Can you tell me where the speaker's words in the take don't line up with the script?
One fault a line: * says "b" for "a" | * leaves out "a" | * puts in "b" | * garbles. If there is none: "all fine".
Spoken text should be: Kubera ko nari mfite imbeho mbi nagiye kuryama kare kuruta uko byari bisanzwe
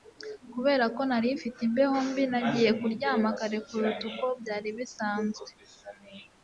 all fine